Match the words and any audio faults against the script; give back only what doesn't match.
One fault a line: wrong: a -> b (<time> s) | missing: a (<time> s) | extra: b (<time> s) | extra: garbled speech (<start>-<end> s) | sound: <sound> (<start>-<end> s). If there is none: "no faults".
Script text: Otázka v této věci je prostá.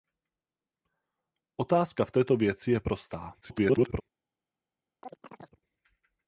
extra: garbled speech (3.4-4.0 s)
sound: chirp (5.0-5.6 s)